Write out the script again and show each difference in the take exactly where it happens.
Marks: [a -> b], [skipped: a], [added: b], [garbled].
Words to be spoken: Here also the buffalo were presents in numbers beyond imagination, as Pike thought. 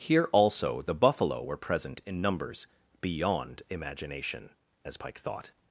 Here also the buffalo were [presents -> present] in numbers beyond imagination, as Pike thought.